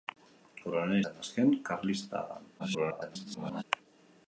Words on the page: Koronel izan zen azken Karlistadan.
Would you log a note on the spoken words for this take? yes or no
yes